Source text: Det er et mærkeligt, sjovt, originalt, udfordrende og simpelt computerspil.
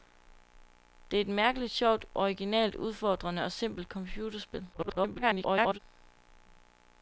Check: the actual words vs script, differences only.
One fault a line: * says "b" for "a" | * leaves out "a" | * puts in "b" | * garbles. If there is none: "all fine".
* garbles